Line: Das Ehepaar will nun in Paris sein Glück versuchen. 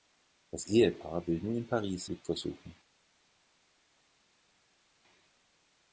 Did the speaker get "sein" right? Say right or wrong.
wrong